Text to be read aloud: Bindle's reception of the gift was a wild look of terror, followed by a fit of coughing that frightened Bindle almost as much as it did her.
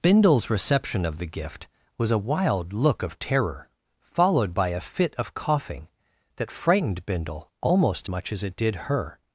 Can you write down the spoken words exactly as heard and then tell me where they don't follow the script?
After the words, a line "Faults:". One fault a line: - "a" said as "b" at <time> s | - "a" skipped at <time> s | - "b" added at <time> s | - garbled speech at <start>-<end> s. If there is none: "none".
Bindle's reception of the gift was a wild look of terror, followed by a fit of coughing that frightened Bindle almost much as it did her.
Faults:
- "as" skipped at 8.1 s